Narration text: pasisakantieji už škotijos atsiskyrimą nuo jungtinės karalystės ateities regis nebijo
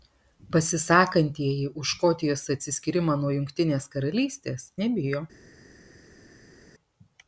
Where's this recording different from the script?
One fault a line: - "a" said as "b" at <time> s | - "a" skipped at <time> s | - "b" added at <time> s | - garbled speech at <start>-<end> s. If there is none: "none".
- "ateities regis" skipped at 4.7 s